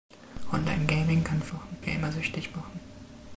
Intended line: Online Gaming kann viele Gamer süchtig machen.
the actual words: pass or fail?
fail